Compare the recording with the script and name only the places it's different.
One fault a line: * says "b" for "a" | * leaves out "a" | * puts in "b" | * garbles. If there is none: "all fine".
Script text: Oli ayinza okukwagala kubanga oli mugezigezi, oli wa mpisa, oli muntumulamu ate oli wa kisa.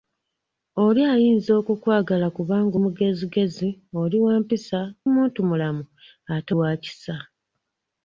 * leaves out "oli"
* leaves out "oli"
* leaves out "oli"